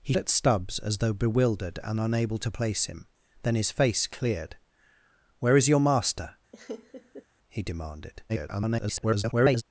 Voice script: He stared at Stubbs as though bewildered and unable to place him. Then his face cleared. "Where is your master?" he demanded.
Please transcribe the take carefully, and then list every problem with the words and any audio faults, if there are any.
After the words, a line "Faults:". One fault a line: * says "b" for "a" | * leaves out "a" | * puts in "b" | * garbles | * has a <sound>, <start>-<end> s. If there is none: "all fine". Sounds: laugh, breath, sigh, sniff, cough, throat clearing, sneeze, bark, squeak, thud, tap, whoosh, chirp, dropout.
He at Stubbs as though bewildered and unable to place him. Then his face cleared. "Where is your master?" he demanded. [garbled]
Faults:
* leaves out "stared"
* has a laugh, 6.5-7.3 s
* garbles